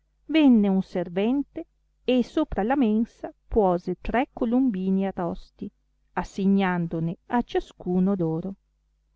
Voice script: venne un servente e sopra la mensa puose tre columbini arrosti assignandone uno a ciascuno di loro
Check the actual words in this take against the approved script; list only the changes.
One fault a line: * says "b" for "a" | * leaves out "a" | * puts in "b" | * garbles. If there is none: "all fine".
* leaves out "uno"
* leaves out "di"